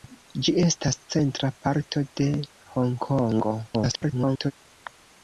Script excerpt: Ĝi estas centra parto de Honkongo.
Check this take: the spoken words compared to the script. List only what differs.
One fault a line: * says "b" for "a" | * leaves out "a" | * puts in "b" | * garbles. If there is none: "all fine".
* garbles